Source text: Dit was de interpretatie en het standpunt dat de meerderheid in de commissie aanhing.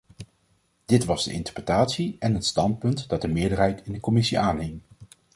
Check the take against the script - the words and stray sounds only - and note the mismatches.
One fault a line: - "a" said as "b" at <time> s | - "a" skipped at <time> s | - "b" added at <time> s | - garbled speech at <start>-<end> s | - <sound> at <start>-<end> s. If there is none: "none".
none